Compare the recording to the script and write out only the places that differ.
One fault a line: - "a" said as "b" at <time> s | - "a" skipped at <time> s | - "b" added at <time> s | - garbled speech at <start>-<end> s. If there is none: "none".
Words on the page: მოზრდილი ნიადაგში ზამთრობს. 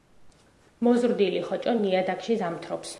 - "ხოჭო" added at 1.5 s